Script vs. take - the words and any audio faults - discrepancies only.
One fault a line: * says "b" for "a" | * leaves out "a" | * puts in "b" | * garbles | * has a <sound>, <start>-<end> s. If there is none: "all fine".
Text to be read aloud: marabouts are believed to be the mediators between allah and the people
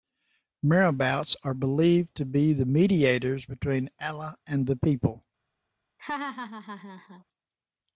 * has a laugh, 6.0-7.2 s